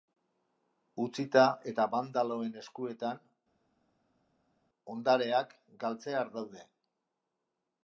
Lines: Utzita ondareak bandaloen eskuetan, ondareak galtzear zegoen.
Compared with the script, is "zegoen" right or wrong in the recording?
wrong